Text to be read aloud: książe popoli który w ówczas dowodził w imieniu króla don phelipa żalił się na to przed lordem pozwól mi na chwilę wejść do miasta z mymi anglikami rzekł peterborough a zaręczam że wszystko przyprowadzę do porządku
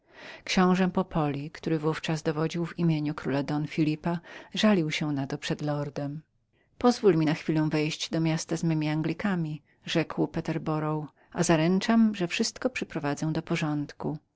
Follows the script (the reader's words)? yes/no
yes